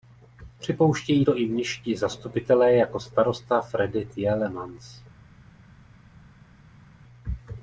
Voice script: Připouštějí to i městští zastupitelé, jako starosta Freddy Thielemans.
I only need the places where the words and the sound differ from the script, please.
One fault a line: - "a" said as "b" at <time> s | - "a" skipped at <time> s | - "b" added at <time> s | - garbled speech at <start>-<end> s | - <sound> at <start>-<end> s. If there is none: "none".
none